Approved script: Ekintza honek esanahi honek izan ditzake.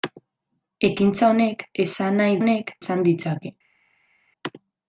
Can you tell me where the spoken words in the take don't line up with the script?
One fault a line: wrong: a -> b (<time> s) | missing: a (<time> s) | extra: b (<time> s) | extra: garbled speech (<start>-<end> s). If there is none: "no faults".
no faults